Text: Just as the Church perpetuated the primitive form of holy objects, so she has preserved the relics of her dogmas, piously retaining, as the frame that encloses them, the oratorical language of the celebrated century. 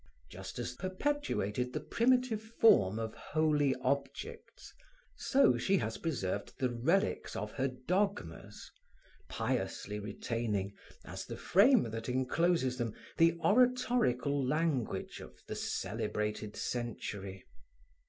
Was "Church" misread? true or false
true